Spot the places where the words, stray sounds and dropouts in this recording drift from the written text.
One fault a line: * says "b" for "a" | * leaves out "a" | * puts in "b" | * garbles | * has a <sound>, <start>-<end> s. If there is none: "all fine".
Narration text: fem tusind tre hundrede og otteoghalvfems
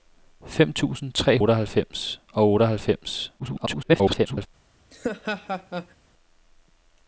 * says "otteoghalvfems" for "hundrede"
* garbles
* has a laugh, 4.9-6.0 s